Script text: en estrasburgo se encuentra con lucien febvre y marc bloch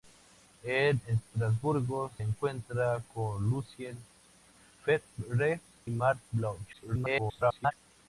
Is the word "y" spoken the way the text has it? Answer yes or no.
no